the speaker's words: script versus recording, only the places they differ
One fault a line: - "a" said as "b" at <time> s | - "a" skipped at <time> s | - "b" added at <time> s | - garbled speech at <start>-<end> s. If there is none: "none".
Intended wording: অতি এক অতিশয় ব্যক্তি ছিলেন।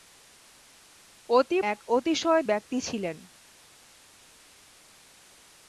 none